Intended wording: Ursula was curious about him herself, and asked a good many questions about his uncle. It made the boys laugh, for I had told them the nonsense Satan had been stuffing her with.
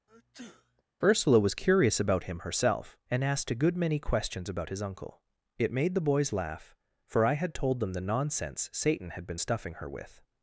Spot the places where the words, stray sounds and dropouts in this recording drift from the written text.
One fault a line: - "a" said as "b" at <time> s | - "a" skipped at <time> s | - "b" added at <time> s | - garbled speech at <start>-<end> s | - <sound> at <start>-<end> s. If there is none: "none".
- sneeze at 0.1-0.8 s